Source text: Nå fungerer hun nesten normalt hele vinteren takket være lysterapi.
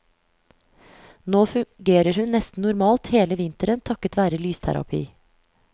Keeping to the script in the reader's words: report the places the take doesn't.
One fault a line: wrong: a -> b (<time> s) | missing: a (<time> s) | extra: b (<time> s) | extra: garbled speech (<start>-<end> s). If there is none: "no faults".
no faults